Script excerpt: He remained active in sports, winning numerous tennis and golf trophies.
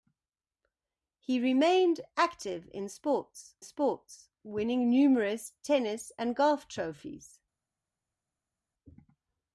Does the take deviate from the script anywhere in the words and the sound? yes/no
yes